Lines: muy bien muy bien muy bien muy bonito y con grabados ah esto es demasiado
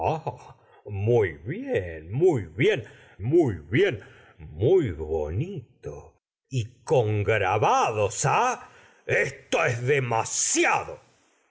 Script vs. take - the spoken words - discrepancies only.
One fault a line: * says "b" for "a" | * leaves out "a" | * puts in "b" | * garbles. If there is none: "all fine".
all fine